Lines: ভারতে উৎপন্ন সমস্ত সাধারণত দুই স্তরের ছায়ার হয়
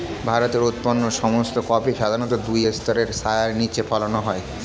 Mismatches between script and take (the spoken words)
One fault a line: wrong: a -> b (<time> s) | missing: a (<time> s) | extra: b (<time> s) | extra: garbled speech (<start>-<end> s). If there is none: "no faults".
extra: কফি (1.7 s)
extra: নিচে ফলানো (3.6 s)